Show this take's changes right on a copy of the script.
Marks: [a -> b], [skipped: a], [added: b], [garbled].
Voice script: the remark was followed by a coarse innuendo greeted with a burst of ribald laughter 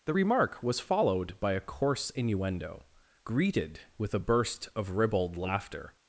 the remark was followed by a coarse innuendo greeted with a burst of ribald laughter